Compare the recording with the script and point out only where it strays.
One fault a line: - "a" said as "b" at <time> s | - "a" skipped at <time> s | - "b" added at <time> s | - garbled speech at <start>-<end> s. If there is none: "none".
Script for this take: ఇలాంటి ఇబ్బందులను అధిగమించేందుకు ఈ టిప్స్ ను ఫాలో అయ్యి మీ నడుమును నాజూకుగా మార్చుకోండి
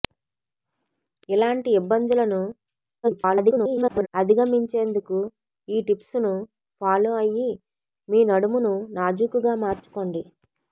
- garbled speech at 3.0-4.1 s